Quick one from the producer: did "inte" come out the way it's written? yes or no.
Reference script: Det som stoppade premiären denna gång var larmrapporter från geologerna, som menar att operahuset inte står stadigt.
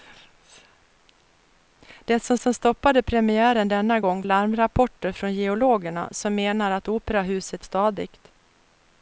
no